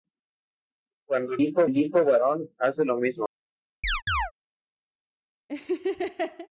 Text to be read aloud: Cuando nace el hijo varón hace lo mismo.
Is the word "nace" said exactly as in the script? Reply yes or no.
no